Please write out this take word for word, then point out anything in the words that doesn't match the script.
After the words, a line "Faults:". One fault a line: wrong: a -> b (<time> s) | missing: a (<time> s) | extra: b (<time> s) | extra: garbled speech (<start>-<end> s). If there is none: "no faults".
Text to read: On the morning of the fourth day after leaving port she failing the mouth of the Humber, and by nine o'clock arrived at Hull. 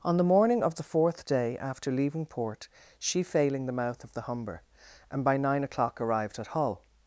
On the morning of the fourth day after leaving port she failing the mouth of the Humber, and by nine o'clock arrived at Hull.
Faults:
no faults